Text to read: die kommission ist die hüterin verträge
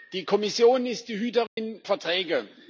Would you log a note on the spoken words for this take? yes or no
no